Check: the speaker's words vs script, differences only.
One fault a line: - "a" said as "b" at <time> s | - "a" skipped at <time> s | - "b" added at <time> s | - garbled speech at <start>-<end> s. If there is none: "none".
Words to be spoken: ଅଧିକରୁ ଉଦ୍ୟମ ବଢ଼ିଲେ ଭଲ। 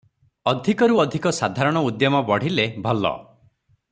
- "ଅଧିକ ସାଧାରଣ" added at 1.0 s